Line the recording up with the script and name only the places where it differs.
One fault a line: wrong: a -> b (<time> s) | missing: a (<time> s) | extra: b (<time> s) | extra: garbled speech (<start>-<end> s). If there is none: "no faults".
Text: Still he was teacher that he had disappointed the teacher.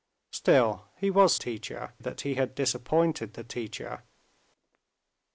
no faults